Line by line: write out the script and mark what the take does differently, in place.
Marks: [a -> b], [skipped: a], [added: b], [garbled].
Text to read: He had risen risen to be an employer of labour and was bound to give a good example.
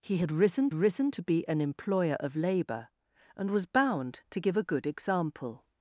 He had risen risen to be an employer of labour and was bound to give a good example.